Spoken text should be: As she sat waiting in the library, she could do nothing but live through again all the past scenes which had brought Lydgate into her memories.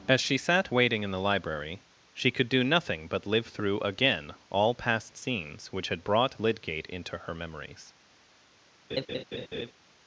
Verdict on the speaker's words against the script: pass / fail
fail